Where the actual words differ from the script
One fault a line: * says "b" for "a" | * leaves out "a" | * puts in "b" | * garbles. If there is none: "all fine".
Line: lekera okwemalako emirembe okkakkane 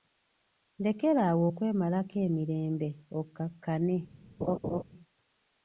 * puts in "awo"